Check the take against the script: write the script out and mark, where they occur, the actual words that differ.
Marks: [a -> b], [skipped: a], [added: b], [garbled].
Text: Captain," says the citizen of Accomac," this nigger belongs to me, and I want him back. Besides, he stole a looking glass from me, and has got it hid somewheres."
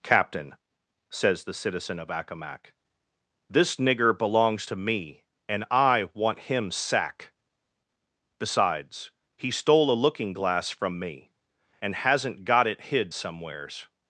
Captain," says the citizen of Accomac," this nigger belongs to me, and I want him [back. -> sack] Besides, he stole a looking glass from me, and [has -> hasn't] got it hid somewheres."